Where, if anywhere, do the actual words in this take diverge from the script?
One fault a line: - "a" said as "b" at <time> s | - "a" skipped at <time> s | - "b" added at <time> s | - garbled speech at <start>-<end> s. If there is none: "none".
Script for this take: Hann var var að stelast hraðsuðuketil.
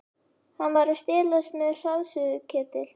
- "var" skipped at 0.9 s
- "með" added at 1.6 s